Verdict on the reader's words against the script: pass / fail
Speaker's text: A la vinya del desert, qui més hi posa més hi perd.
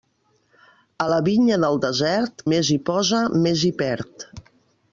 fail